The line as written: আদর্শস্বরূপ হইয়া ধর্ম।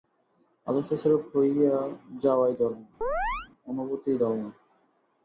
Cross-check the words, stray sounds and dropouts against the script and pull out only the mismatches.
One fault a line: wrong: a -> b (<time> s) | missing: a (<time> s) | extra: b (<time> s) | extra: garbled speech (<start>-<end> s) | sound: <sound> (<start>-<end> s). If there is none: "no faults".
extra: যাওয়াই ধর্ম অনুভূতিই (2.2 s)
sound: chirp (3.0-3.5 s)